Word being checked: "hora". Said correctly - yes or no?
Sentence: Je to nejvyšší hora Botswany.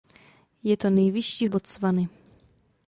no